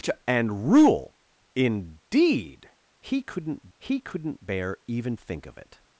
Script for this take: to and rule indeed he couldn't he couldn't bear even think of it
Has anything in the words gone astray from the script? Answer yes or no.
no